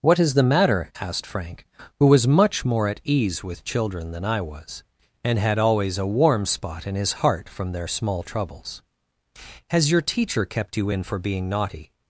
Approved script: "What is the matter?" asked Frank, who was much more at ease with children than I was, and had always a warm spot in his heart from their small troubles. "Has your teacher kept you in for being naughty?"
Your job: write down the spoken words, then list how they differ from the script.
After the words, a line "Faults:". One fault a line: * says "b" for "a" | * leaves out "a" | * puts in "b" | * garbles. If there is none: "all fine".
"What is the matter?" asked Frank, who was much more at ease with children than I was, and had always a warm spot in his heart from their small troubles. "Has your teacher kept you in for being naughty?"
Faults:
all fine